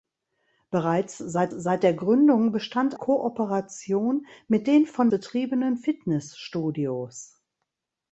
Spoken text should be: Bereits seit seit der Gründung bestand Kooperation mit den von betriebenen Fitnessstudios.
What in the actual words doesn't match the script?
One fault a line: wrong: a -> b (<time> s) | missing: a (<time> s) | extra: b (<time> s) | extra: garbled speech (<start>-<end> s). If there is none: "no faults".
no faults